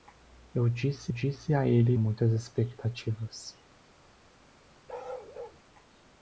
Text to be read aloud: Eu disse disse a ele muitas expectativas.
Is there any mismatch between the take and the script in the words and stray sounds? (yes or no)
yes